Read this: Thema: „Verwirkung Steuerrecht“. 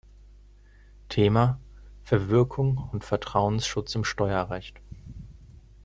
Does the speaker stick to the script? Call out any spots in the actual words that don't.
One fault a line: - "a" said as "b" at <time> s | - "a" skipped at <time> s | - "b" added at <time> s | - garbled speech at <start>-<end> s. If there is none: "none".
- "und Vertrauensschutz im" added at 2.9 s